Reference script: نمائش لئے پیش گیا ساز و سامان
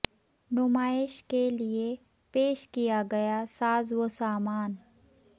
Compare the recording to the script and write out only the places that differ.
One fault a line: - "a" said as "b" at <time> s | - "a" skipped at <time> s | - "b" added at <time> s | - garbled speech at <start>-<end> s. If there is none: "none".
- "کے" added at 1.2 s
- "کیا" added at 2.7 s